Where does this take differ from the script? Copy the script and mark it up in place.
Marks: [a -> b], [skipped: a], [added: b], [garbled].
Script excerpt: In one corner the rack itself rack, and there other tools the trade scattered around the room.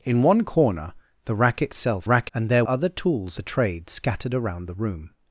In one corner the rack itself rack, and there other tools the trade scattered around the room.